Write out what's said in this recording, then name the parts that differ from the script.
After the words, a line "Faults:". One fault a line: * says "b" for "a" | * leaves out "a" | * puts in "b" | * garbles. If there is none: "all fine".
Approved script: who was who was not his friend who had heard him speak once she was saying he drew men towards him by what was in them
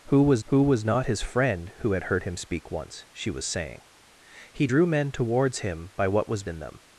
who was who was not his friend who had heard him speak once she was saying he drew men towards him by what was in them
Faults:
all fine